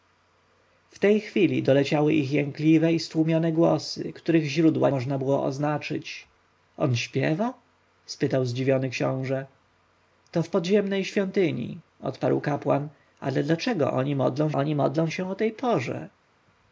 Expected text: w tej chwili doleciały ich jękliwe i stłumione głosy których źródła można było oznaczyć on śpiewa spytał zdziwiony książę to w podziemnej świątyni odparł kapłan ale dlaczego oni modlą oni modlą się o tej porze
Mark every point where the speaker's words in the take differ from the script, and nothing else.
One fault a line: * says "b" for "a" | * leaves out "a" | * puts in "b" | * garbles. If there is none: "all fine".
all fine